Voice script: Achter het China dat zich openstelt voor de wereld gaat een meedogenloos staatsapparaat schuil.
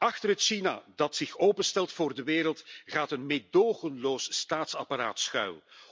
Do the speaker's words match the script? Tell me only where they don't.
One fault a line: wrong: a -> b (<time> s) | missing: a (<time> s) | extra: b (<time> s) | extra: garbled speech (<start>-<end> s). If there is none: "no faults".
no faults